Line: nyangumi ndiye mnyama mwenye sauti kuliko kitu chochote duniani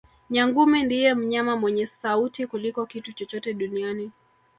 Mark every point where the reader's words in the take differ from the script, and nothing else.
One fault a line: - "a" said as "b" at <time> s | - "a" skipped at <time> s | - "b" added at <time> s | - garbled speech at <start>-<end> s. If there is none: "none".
none